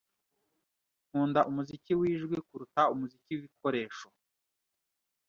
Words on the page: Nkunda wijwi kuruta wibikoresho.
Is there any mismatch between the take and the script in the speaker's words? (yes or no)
yes